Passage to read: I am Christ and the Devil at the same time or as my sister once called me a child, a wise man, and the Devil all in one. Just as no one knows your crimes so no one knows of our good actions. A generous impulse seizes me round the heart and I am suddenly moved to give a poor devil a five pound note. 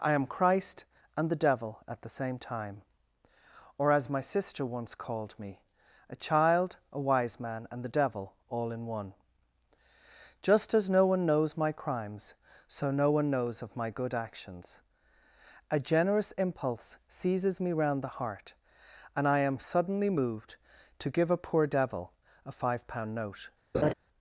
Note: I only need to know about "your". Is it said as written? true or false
false